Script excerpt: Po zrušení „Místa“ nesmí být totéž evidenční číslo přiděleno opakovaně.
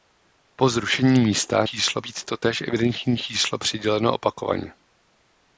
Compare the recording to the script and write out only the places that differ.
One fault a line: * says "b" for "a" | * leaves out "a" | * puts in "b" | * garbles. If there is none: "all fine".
* says "číslo" for "nesmí"